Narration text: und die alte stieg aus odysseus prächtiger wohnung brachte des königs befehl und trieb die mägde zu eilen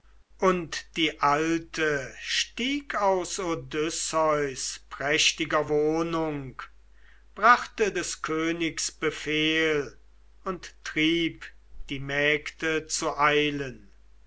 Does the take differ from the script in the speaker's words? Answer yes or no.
no